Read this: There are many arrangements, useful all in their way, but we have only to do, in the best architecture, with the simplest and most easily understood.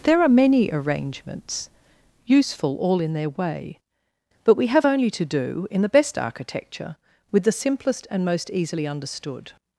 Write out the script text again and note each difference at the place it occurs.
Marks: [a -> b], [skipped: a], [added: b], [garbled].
There are many arrangements, useful all in their way, but we have only to do, in the best architecture, with the simplest and most easily understood.